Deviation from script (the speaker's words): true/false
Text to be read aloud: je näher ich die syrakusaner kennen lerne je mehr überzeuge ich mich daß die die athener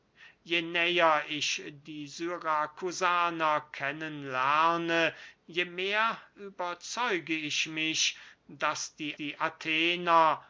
false